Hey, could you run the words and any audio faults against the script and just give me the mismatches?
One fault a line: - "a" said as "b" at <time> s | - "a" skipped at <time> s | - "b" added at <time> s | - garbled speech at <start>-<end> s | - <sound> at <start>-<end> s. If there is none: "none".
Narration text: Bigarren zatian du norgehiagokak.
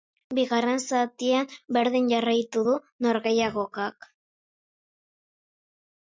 - "berdin jarraitu" added at 1.8 s